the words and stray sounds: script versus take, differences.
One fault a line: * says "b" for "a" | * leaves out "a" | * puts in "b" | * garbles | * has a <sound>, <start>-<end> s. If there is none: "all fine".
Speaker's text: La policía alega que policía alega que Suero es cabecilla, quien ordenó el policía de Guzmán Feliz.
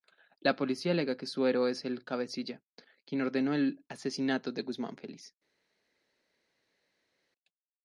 * leaves out "policía alega que"
* puts in "el"
* says "asesinato" for "policía"